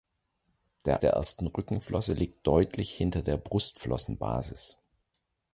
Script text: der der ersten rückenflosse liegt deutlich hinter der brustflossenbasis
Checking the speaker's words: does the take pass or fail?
pass